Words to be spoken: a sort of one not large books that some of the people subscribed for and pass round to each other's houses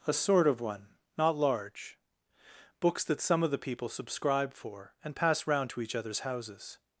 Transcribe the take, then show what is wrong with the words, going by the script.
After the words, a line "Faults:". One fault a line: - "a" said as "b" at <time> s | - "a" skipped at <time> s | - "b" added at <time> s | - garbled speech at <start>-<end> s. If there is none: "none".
a sort of one not large books that some of the people subscribe for and pass round to each other's houses
Faults:
- "subscribed" said as "subscribe" at 3.9 s